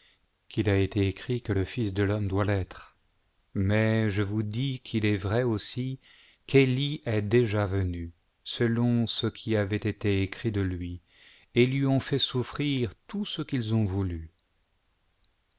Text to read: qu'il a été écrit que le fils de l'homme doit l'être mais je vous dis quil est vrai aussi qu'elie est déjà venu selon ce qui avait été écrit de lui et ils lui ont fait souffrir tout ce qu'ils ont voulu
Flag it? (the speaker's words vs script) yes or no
no